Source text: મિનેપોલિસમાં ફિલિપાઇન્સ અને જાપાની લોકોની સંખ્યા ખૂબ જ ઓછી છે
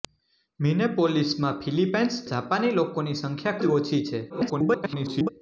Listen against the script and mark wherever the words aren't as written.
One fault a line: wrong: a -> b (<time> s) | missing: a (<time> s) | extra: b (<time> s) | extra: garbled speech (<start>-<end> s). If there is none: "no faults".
missing: અને (2.2 s)
missing: ખૂબ (3.6 s)
extra: garbled speech (4.3-5.3 s)